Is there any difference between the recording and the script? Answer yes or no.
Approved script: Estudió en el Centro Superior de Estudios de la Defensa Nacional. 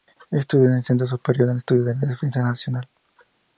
no